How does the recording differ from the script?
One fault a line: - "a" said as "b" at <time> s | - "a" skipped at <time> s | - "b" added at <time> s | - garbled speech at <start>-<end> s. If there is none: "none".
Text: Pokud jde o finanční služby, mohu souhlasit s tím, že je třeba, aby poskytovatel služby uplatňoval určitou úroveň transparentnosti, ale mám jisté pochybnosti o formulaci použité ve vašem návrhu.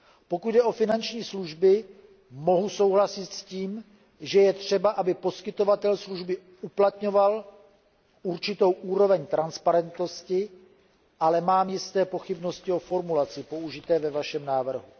none